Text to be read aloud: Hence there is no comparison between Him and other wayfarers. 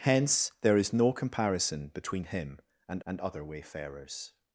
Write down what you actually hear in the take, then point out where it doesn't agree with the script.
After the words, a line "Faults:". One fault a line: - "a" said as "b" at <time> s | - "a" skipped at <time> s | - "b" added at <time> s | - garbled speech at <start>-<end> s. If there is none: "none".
Hence there is no comparison between Him and and other wayfarers.
Faults:
- "and" added at 3.0 s